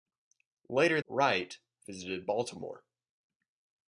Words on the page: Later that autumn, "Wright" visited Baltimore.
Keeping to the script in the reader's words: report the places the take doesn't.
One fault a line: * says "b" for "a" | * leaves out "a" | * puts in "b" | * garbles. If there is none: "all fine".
* leaves out "that autumn"